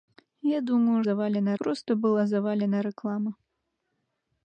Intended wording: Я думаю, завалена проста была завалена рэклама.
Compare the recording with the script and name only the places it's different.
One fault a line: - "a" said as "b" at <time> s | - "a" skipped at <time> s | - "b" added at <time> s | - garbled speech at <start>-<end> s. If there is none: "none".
none